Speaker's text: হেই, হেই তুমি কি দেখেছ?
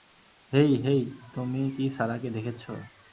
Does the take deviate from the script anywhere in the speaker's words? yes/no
yes